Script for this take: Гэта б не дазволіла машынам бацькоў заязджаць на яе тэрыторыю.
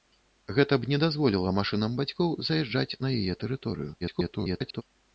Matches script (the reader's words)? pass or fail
fail